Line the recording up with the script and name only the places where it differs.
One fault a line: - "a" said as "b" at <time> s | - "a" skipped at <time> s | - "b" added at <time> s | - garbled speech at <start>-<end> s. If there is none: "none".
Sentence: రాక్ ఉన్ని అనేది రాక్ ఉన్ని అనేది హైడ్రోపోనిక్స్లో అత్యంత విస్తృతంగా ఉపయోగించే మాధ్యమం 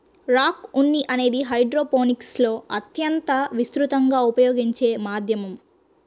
- "రాక్ ఉన్ని అనేది" skipped at 1.4 s